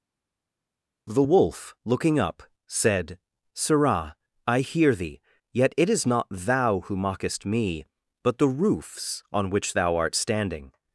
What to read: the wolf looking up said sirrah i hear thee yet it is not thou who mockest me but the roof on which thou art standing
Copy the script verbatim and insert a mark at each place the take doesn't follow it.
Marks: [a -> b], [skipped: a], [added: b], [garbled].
the wolf looking up said sirrah i hear thee yet it is not thou who mockest me but the [roof -> roofs] on which thou art standing